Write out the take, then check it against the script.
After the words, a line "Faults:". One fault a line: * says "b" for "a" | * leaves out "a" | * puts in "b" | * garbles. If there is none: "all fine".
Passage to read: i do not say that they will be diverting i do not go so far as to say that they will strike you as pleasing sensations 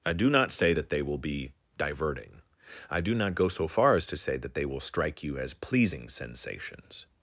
i do not say that they will be diverting i do not go so far as to say that they will strike you as pleasing sensations
Faults:
all fine